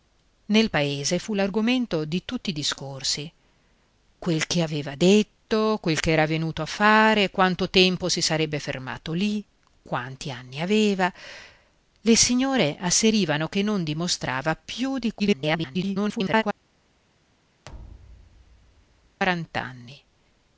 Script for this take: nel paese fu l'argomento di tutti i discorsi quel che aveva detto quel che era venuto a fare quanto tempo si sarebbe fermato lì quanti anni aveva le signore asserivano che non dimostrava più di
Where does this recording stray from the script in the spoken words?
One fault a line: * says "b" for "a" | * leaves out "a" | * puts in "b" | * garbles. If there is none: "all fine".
* garbles